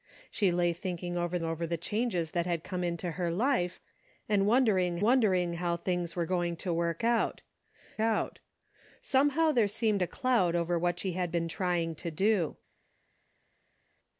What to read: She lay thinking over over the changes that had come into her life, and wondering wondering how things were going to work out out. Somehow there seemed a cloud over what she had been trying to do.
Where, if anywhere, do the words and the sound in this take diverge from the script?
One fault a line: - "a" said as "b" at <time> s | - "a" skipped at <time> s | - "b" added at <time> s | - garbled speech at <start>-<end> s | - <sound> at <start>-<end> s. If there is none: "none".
none